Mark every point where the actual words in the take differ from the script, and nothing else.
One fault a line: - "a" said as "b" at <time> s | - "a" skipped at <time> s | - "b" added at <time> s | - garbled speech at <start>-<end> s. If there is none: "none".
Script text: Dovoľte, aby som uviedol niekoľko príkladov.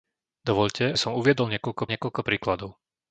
- "aby" skipped at 1.0 s
- "niekoľko" added at 1.9 s